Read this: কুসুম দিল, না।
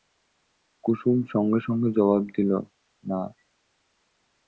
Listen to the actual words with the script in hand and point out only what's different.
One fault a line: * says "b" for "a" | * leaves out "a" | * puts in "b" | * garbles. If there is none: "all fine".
* puts in "সঙ্গে সঙ্গে জবাব"